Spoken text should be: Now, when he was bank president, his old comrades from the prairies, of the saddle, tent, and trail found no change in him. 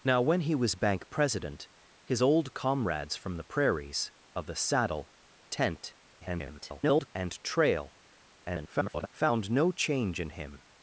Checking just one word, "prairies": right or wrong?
right